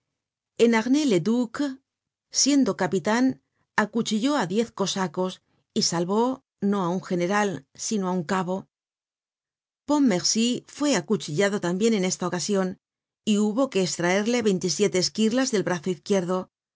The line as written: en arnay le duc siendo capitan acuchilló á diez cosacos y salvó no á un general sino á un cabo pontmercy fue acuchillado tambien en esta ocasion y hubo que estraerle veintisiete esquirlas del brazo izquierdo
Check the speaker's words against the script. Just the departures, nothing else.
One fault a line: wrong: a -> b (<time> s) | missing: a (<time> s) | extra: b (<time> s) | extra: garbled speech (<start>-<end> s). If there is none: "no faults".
no faults